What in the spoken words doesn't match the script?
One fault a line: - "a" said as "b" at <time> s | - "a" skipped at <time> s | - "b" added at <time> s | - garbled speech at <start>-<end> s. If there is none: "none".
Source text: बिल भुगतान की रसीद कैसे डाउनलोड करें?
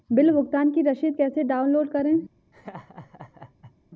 none